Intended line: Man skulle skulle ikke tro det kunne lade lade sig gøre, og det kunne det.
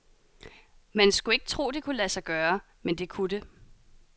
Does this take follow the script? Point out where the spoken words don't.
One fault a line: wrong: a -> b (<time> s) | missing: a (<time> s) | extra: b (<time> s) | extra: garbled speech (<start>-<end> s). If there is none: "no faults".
missing: skulle (1.4 s)
missing: lade (2.1 s)
wrong: og -> men (2.8 s)